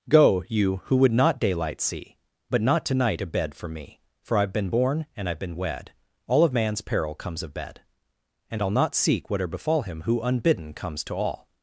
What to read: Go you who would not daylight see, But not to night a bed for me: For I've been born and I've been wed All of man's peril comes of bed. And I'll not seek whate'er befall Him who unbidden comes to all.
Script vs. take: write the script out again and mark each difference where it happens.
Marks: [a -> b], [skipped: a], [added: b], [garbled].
Go you who would not daylight see, But not to night a bed for me: For I've been born and I've been wed All of man's peril comes of bed. And I'll not seek whate'er befall Him who unbidden comes to all.